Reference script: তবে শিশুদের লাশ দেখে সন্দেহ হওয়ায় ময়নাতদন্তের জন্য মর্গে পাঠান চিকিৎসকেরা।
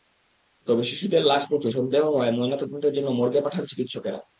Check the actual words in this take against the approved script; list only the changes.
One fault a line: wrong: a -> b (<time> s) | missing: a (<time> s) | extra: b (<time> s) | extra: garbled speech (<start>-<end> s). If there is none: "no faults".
no faults